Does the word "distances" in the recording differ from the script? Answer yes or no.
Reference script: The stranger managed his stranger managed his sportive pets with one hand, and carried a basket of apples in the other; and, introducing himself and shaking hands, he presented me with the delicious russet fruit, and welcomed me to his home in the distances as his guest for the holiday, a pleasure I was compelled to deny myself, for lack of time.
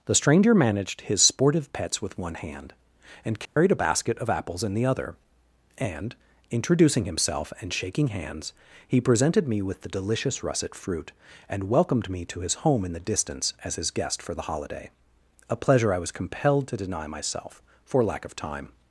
yes